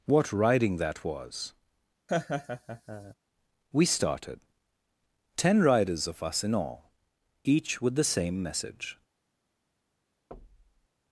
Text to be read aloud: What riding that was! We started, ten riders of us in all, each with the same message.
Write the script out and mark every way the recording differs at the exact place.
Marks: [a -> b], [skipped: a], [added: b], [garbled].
What riding that was! We started, ten riders of us in all, each with the same message.